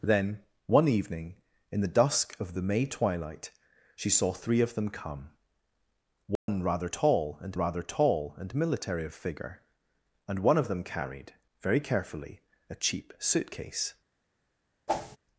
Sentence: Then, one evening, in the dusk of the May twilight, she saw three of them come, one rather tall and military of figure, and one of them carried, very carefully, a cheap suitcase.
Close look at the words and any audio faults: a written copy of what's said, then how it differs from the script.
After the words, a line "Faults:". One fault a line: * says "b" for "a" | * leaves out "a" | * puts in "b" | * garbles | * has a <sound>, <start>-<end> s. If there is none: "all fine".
Then, one evening, in the dusk of the May twilight, she saw three of them come, one rather tall and rather tall and military of figure, and one of them carried, very carefully, a cheap suitcase.
Faults:
* has a dropout, 6.4-6.5 s
* puts in "rather tall and"
* has a whoosh, 14.9-15.2 s